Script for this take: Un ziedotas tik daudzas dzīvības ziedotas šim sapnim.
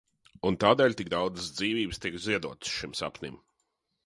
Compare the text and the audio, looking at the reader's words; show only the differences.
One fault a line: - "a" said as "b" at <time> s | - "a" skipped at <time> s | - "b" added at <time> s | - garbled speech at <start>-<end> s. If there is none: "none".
- "ziedotas" said as "tādēļ" at 0.6 s
- "tiek" added at 2.1 s